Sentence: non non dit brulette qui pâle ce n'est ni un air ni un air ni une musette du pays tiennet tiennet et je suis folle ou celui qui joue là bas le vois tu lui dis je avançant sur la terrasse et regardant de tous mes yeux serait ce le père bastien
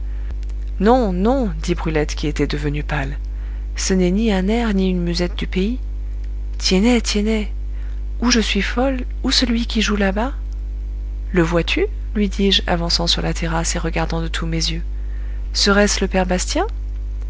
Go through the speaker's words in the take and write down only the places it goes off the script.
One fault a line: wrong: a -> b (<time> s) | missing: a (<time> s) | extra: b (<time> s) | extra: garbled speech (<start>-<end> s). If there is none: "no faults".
extra: était devenue (2.2 s)
missing: un air ni (4.9 s)
wrong: et -> ou (8.2 s)